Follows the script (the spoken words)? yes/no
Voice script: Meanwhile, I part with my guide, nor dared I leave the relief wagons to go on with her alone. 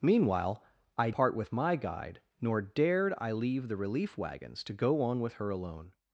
yes